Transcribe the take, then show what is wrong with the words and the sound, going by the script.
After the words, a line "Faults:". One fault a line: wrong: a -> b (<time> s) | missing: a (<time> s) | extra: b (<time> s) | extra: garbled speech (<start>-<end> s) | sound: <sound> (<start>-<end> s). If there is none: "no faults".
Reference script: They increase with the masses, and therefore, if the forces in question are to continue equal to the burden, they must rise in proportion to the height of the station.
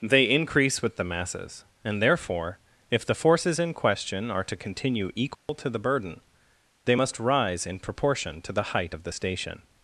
They increase with the masses, and therefore, if the forces in question are to continue equal to the burden, they must rise in proportion to the height of the station.
Faults:
sound: dropout (5.3-5.5 s)